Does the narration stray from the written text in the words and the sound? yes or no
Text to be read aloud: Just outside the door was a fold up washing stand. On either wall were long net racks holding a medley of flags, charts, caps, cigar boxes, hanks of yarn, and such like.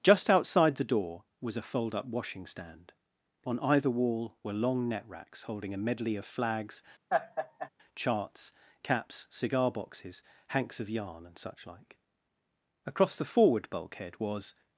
yes